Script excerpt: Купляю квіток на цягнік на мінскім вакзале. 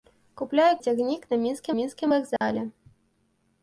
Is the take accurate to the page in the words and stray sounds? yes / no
no